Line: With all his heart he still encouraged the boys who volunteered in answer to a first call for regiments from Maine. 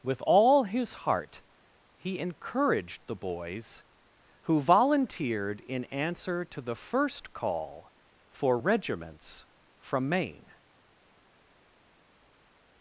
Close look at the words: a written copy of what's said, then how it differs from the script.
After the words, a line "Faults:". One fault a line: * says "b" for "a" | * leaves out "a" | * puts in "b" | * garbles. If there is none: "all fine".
With all his heart he encouraged the boys who volunteered in answer to the first call for regiments from Maine.
Faults:
* leaves out "still"
* says "the" for "a"